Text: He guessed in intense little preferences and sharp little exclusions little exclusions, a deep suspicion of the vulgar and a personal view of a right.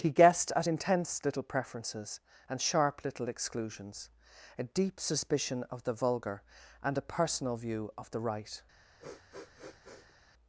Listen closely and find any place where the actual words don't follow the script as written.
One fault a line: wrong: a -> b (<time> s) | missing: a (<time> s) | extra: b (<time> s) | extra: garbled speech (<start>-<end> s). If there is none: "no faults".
wrong: in -> at (0.6 s)
missing: little exclusions (4.1 s)
wrong: a -> the (8.1 s)